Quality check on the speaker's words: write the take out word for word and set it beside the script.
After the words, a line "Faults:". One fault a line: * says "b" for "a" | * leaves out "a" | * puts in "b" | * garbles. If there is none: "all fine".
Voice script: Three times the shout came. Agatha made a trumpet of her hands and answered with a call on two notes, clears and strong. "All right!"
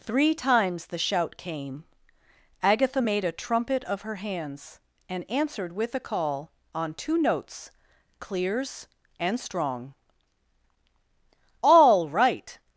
Three times the shout came. Agatha made a trumpet of her hands and answered with a call on two notes, clears and strong. "All right!"
Faults:
all fine